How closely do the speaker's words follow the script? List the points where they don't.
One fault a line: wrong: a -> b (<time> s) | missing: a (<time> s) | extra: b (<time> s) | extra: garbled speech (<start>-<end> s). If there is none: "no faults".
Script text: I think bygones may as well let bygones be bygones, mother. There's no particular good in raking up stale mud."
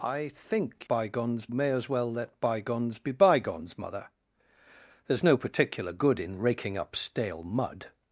no faults